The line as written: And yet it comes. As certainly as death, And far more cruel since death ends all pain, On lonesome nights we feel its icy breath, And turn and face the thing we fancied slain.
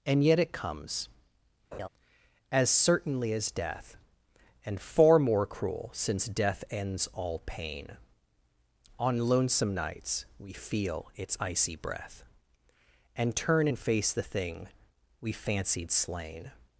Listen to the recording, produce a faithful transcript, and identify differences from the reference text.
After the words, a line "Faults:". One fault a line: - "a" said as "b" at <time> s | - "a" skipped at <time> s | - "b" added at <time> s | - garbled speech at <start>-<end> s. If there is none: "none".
And yet it comes. As certainly as death, And far more cruel since death ends all pain, On lonesome nights we feel its icy breath, And turn and face the thing we fancied slain.
Faults:
none